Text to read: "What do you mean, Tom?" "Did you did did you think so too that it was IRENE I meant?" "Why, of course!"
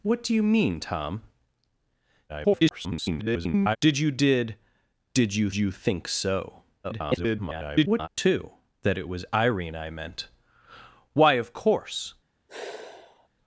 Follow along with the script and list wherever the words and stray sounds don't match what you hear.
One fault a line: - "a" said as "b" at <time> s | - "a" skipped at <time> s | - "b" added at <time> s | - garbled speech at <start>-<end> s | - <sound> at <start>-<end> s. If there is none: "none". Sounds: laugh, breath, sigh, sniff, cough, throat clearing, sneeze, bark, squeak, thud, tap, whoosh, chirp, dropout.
- garbled speech at 2.3-3.8 s
- "you" added at 5.5 s
- garbled speech at 6.8-8.1 s
- sigh at 12.5-13.3 s